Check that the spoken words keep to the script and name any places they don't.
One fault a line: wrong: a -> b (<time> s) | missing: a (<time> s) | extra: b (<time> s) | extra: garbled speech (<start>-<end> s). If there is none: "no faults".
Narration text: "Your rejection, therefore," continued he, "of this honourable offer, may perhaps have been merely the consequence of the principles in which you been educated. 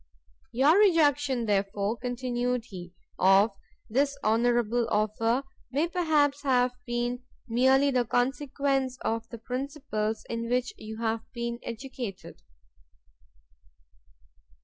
extra: have (11.0 s)